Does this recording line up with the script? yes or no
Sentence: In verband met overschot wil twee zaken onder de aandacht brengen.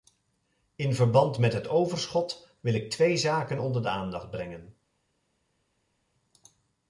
no